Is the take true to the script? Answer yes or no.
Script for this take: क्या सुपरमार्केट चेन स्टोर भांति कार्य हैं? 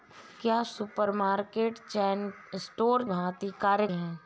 yes